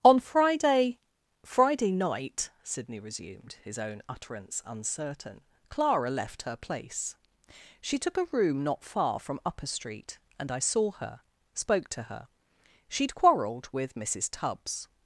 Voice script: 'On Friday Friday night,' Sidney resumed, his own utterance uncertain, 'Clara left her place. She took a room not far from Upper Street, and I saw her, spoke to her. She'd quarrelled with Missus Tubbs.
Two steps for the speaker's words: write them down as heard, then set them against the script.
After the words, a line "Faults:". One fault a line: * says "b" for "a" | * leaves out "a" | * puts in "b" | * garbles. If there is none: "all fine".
'On Friday Friday night,' Sidney resumed, his own utterance uncertain, 'Clara left her place. She took a room not far from Upper Street, and I saw her, spoke to her. She'd quarrelled with Missus Tubbs.
Faults:
all fine